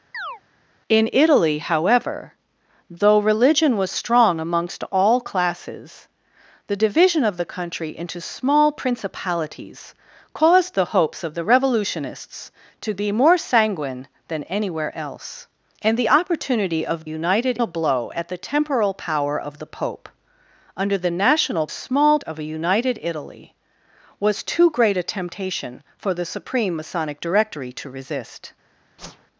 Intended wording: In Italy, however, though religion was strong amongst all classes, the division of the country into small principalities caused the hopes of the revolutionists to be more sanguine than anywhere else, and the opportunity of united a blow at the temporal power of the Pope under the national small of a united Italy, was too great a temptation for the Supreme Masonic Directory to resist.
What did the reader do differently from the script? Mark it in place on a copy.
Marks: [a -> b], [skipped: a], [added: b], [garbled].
In Italy, however, though religion was strong amongst all classes, the division of the country into small principalities caused the hopes of the revolutionists to be more sanguine than anywhere else, and the opportunity of united a blow at the temporal power of the Pope under the national small of a united Italy, was too great a temptation for the Supreme Masonic Directory to resist.